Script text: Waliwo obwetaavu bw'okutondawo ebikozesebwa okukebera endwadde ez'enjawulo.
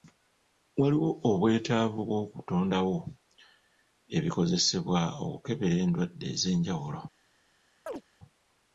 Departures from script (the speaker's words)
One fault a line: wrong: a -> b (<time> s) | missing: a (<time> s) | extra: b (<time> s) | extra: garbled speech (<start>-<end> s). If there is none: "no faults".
no faults